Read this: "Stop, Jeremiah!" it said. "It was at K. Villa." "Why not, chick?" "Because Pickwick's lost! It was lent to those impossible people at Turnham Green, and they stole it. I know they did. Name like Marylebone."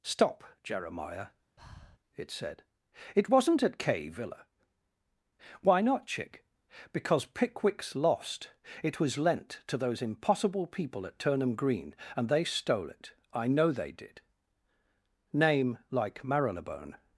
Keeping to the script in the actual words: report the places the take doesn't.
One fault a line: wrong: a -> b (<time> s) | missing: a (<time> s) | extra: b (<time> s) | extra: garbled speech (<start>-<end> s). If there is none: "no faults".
wrong: was -> wasn't (3.3 s)